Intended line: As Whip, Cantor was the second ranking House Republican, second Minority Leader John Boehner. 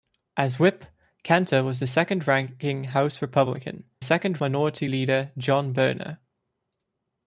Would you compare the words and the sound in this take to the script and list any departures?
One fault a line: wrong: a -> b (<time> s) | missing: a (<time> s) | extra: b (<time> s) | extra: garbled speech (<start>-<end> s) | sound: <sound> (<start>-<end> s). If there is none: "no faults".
no faults